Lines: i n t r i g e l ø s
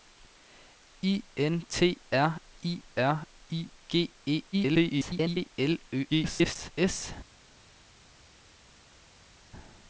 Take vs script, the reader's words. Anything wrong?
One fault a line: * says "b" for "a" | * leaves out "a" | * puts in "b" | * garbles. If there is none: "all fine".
* puts in "r i"
* garbles
* garbles